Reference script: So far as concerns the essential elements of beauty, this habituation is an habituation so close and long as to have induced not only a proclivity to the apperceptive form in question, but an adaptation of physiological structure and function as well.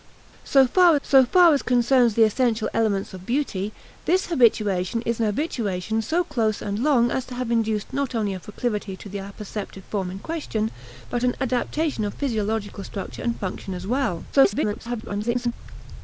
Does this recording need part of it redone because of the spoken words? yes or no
yes